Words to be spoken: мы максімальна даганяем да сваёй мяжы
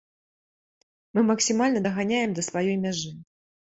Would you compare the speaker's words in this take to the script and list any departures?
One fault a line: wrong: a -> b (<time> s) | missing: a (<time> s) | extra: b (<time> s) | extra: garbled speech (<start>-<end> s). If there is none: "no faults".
no faults